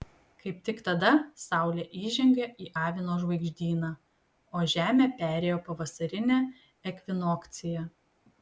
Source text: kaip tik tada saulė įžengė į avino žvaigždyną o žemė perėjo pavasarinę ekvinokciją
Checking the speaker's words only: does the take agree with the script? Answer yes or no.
yes